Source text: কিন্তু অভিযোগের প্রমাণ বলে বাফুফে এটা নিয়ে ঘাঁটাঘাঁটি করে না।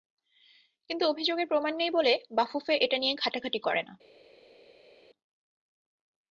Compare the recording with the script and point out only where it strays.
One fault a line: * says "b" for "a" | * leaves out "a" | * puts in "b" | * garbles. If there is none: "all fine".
* puts in "নেই"